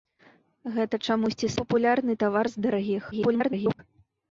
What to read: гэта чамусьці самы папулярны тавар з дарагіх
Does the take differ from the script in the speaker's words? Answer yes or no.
yes